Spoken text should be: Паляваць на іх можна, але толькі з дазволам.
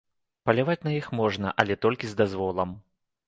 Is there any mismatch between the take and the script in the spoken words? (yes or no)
no